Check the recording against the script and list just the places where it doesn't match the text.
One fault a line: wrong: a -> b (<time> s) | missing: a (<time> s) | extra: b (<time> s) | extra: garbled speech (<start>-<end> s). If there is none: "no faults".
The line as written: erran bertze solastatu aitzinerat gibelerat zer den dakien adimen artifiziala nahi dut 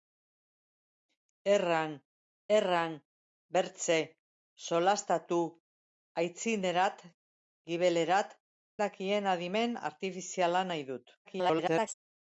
extra: erran (2.6 s)
missing: zer den (8.4 s)
extra: garbled speech (11.2-11.9 s)